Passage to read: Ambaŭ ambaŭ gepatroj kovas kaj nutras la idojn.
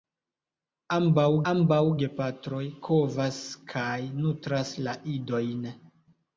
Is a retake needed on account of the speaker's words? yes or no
no